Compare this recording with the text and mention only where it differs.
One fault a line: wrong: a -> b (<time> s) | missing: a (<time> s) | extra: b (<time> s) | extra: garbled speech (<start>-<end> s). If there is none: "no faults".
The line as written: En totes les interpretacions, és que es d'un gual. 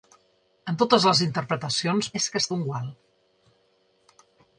no faults